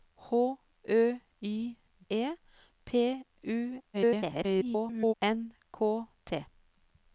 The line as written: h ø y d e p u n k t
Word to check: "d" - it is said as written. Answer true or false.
false